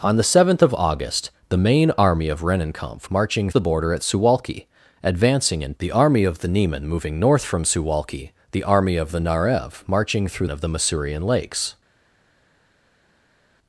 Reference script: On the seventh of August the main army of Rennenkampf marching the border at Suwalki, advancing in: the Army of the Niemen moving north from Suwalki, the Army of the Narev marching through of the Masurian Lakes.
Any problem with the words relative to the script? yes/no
no